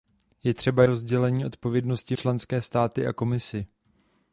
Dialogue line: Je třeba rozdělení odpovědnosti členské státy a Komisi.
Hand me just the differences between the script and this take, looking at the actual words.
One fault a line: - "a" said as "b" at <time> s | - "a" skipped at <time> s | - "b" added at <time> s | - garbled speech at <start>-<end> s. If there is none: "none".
none